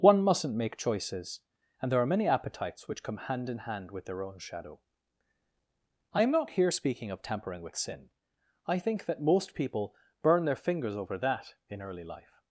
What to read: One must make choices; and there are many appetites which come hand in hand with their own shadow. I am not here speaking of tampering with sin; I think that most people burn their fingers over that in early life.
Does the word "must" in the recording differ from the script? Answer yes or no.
yes